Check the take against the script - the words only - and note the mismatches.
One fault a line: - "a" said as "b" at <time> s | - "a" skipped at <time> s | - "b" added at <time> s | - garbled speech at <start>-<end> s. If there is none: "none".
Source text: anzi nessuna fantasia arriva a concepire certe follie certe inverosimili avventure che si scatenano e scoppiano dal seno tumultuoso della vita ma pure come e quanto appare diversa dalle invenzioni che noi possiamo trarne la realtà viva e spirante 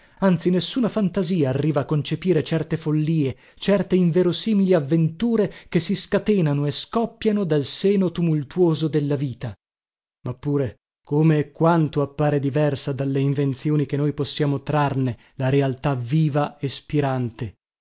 none